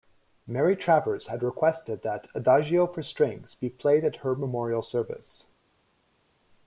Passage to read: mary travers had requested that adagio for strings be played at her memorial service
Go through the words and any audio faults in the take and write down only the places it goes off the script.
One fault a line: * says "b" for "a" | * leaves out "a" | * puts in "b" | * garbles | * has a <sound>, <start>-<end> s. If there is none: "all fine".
all fine